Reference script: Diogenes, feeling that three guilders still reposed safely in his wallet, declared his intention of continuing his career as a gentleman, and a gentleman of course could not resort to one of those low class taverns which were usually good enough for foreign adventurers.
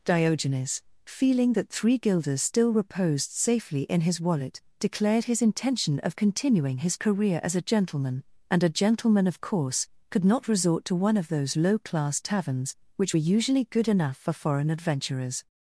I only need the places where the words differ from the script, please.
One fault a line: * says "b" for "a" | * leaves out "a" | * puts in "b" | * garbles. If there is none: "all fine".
all fine